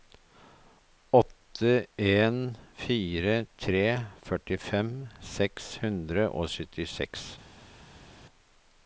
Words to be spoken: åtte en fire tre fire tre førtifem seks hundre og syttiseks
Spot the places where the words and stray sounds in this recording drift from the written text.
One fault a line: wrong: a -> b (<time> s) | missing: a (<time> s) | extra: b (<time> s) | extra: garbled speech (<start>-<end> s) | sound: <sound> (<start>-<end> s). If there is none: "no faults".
missing: fire tre (3.8 s)